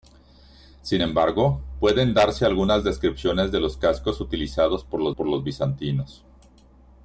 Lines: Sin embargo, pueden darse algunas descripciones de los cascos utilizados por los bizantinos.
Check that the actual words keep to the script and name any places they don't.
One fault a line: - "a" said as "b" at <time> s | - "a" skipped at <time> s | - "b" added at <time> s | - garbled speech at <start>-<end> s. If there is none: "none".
- "por los" added at 5.1 s